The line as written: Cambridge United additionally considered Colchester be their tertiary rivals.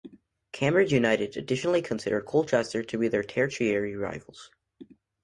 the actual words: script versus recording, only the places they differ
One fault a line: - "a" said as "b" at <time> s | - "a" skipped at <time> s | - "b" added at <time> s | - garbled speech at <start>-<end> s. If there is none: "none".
- "to" added at 2.8 s